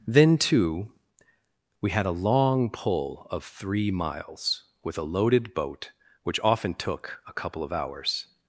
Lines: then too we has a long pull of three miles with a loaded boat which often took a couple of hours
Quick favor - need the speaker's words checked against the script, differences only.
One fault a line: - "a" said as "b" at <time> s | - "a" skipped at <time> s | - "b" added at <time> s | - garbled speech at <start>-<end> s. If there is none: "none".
- "has" said as "had" at 1.9 s